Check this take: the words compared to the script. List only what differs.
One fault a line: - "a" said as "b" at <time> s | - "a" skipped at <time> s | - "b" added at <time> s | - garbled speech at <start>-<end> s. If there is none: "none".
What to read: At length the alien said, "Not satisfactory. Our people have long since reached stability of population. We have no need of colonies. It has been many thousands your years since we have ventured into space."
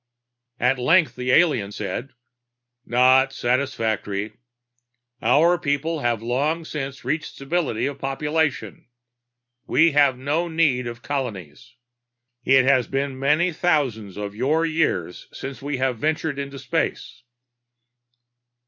- "of" added at 14.2 s